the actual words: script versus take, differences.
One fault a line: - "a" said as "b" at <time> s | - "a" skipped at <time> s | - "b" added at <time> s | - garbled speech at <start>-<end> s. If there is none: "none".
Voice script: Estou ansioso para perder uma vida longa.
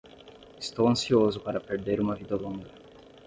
none